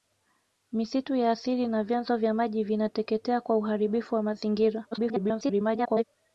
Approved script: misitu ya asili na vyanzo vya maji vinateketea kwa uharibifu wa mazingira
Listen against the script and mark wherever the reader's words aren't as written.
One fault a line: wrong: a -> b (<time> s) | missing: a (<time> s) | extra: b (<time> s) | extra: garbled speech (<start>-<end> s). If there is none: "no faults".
extra: garbled speech (4.9-6.0 s)